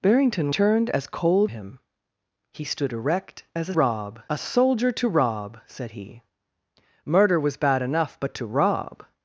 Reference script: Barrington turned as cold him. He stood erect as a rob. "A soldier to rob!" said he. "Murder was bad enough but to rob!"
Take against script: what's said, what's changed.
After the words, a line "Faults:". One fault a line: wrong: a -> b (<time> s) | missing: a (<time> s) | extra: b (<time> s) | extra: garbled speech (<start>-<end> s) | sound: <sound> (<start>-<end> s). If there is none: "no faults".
Barrington turned as cold him. He stood erect as a rob. "A soldier to rob!" said he. "Murder was bad enough but to rob!"
Faults:
no faults